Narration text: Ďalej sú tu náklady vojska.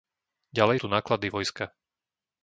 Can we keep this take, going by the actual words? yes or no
no